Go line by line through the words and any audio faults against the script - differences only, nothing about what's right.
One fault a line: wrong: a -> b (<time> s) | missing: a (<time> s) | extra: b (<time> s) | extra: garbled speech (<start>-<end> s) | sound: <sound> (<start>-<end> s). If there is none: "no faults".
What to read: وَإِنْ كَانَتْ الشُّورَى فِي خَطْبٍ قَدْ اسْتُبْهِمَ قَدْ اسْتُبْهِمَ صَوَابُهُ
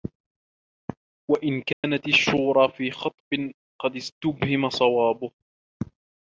sound: dropout (1.7-1.8 s)
missing: قَدْ اسْتُبْهِمَ (4.7 s)